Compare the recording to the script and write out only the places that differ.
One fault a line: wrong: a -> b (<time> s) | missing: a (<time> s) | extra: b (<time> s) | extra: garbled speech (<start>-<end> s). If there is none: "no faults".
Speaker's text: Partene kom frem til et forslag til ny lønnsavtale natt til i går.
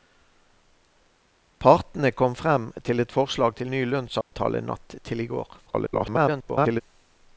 extra: garbled speech (5.7-6.8 s)